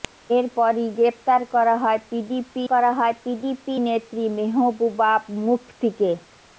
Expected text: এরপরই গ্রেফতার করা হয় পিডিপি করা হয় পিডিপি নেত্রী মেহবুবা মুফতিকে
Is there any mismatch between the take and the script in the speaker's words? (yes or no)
no